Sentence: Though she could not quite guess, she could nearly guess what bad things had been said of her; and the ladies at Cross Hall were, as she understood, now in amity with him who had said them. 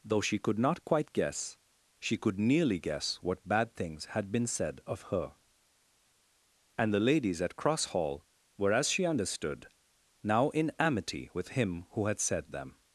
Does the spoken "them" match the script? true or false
true